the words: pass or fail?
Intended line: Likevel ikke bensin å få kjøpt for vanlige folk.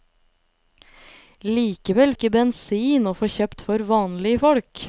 pass